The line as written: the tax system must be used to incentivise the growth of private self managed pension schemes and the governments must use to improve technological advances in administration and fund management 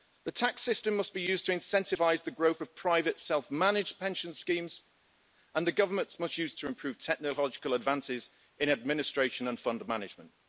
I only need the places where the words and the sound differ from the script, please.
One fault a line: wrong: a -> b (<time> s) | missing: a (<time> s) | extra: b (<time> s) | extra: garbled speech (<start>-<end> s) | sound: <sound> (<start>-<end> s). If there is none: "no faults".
no faults